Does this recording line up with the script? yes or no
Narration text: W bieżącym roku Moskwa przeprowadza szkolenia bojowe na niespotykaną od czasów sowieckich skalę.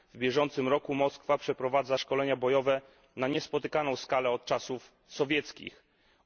yes